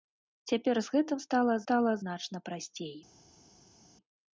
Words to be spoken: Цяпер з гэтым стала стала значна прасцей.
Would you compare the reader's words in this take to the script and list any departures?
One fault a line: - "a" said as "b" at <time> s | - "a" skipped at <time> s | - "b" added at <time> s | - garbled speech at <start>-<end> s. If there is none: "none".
none